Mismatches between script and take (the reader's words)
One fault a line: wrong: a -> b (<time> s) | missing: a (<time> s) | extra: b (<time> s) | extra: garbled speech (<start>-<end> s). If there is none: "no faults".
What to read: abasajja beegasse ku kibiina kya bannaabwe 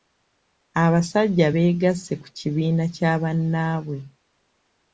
no faults